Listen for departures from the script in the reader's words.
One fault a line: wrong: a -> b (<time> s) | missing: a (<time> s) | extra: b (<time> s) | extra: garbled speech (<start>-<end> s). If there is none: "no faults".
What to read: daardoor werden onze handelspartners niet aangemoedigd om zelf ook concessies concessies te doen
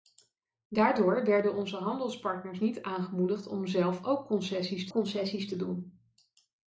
no faults